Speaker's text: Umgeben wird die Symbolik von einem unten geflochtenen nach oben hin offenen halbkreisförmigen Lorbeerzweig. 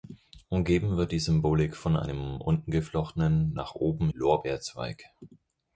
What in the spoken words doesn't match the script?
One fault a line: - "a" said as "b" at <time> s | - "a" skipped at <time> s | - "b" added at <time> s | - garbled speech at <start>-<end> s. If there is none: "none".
- "hin offenen halbkreisförmigen" skipped at 4.1 s